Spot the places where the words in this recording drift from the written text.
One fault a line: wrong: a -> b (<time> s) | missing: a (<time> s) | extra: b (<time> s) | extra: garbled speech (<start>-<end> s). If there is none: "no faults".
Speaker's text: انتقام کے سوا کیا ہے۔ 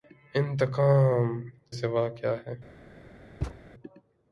missing: کے (1.3 s)